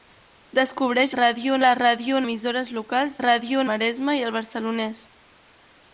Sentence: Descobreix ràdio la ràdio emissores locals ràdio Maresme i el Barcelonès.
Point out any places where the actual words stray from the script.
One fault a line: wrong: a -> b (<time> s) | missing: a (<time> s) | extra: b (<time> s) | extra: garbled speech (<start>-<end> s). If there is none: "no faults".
no faults